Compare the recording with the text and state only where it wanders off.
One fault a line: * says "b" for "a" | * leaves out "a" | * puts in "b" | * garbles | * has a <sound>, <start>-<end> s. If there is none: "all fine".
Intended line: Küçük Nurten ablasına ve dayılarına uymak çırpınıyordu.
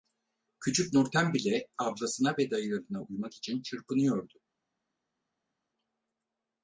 * puts in "bile"
* puts in "için"